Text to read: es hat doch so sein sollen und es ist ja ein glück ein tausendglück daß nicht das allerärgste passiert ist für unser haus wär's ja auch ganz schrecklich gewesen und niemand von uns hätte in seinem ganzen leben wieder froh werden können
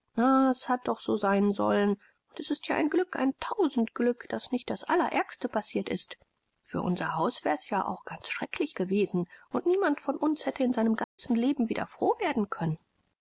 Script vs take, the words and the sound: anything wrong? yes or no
yes